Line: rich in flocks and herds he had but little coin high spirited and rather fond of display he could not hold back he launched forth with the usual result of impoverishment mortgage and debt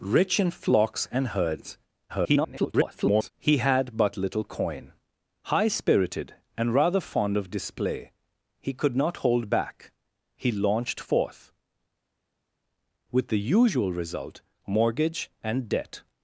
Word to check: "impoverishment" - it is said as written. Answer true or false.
false